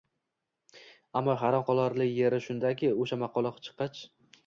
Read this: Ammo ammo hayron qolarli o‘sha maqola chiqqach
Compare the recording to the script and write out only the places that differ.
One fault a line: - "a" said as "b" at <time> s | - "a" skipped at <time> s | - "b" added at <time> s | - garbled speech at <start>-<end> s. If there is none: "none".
- "ammo" skipped at 1.4 s
- "yeri shundaki" added at 2.1 s